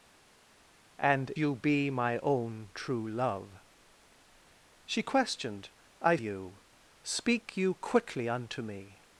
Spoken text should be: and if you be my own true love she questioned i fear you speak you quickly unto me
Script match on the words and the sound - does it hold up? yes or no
no